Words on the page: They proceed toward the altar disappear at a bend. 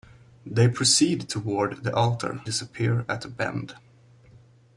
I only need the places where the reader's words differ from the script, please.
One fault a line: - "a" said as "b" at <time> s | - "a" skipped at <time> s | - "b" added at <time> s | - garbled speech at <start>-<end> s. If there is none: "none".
none